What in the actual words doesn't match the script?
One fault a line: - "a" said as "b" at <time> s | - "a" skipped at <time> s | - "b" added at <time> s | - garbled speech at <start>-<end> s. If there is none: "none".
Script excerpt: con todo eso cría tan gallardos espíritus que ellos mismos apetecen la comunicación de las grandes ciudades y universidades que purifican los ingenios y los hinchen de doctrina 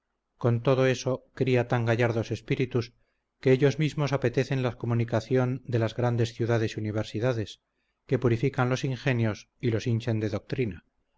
none